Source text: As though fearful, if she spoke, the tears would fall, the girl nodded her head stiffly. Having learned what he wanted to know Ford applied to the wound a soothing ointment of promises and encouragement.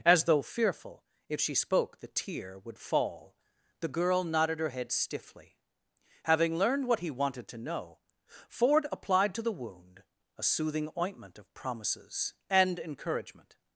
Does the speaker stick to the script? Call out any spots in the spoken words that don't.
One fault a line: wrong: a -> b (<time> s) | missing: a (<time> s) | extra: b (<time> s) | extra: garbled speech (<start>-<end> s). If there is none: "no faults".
wrong: tears -> tear (2.1 s)